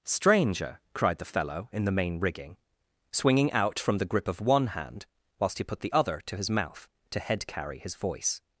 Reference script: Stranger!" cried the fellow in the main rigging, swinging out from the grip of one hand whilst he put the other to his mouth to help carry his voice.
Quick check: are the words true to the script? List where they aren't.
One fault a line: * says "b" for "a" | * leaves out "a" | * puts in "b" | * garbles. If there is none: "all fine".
* says "head" for "help"